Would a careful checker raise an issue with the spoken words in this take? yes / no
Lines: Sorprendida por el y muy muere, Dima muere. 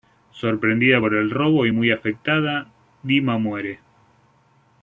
yes